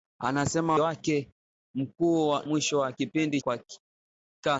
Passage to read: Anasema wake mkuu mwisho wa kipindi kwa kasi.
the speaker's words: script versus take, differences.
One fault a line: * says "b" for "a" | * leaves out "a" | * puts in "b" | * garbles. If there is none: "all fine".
all fine